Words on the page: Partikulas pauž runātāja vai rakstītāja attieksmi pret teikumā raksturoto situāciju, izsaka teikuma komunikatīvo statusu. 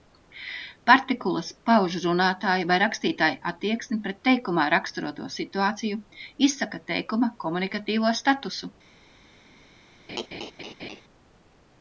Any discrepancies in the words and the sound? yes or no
yes